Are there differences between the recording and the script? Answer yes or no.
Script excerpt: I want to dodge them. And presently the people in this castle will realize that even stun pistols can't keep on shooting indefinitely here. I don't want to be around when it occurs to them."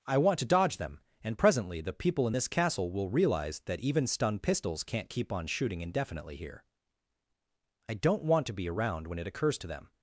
no